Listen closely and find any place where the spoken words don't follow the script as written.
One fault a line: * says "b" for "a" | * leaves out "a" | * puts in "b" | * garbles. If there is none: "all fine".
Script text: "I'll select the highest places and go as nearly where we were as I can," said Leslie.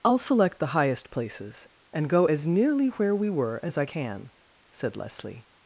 all fine